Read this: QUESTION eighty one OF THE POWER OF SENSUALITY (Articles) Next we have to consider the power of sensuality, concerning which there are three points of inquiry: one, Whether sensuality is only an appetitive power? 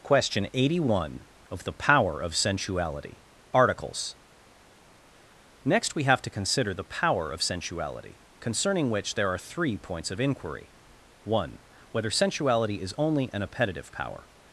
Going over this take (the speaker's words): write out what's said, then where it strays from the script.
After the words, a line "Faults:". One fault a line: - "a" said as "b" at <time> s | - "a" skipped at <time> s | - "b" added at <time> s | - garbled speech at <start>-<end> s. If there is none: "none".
QUESTION eighty one OF THE POWER OF SENSUALITY (Articles) Next we have to consider the power of sensuality, concerning which there are three points of inquiry: one, Whether sensuality is only an appetitive power?
Faults:
none